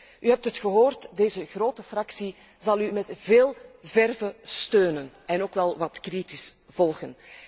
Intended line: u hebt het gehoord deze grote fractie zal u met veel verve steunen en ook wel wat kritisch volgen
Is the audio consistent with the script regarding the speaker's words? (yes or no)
yes